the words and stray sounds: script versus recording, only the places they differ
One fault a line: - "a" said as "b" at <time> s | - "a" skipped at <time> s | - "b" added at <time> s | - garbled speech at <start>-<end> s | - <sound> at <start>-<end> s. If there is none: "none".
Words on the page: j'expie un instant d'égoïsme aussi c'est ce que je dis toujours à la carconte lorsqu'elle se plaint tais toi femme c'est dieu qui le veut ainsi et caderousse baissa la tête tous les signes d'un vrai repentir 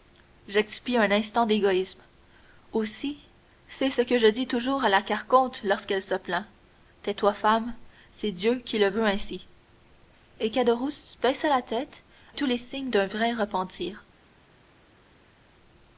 none